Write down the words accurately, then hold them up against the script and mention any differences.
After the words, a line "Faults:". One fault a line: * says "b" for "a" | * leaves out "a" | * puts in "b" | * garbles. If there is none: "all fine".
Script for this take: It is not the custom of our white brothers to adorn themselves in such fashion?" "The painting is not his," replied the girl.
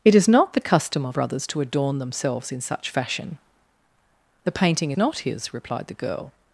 It is not the custom of brothers to adorn themselves in such fashion?" "The painting not his," replied the girl.
Faults:
* leaves out "our white"
* leaves out "is"